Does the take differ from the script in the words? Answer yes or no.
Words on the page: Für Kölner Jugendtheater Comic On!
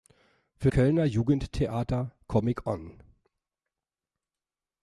no